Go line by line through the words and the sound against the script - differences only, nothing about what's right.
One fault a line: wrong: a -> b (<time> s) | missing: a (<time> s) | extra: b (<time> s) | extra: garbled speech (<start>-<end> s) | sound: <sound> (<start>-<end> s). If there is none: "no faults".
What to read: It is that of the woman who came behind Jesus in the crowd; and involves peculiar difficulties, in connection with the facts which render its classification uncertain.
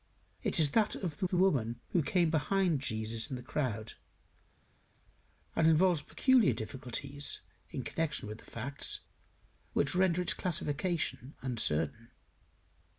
extra: the (1.3 s)